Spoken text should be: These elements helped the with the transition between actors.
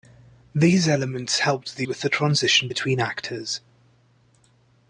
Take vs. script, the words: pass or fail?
pass